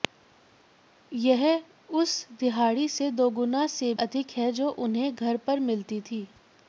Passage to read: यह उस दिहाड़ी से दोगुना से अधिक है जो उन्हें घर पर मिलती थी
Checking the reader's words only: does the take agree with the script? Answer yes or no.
yes